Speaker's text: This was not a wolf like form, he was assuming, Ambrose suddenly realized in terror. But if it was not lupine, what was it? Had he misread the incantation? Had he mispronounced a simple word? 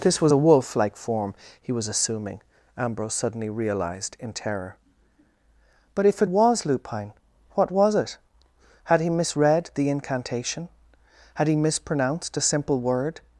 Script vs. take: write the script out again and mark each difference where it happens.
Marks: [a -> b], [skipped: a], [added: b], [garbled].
This was [skipped: not] a wolf like form, he was assuming, Ambrose suddenly realized in terror. But if it was [skipped: not] lupine, what was it? Had he misread the incantation? Had he mispronounced a simple word?